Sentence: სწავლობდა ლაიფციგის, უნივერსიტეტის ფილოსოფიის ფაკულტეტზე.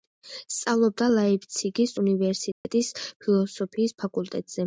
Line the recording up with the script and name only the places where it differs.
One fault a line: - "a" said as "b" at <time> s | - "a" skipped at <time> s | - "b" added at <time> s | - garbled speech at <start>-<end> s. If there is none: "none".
none